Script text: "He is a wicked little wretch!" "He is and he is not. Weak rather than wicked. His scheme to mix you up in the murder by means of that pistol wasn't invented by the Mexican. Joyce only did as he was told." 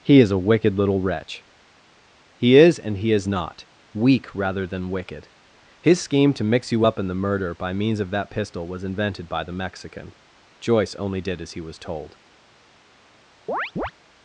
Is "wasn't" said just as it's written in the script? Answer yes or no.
no